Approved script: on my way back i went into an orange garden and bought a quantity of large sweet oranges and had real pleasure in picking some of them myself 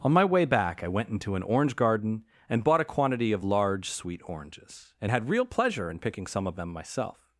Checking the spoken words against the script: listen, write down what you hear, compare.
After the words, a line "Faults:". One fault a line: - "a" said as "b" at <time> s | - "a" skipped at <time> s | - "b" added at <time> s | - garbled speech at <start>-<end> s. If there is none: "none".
on my way back i went into an orange garden and bought a quantity of large sweet oranges and had real pleasure in picking some of them myself
Faults:
none